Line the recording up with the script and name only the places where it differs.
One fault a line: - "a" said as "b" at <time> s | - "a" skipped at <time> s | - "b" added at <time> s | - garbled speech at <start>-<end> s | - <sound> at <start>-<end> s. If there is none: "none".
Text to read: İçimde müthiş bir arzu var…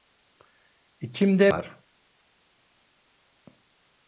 - "müthiş bir arzu" skipped at 1.5 s